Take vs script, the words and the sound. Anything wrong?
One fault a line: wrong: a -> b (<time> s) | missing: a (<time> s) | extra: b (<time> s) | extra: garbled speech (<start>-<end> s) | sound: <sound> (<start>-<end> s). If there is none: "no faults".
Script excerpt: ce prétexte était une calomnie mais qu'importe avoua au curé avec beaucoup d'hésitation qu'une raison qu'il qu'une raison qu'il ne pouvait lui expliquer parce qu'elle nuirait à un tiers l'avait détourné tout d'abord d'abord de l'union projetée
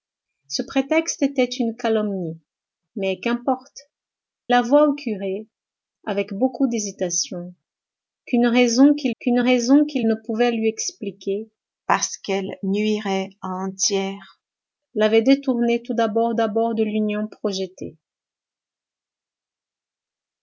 no faults